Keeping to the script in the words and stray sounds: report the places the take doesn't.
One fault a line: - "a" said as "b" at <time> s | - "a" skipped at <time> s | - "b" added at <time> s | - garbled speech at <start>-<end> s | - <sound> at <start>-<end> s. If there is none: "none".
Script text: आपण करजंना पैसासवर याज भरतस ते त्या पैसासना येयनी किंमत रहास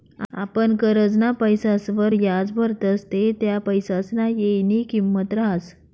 none